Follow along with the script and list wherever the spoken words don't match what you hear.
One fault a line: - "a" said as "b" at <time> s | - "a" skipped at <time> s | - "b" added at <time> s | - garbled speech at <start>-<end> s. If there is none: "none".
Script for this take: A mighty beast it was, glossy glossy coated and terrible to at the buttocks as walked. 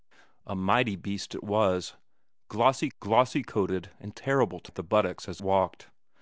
none